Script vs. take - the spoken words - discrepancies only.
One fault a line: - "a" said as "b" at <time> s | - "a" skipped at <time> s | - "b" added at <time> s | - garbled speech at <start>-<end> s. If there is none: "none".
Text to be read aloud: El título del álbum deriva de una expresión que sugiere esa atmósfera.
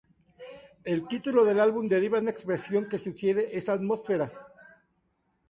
- "de" skipped at 2.2 s